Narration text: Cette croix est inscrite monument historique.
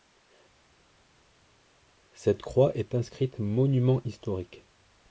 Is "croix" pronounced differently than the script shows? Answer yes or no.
no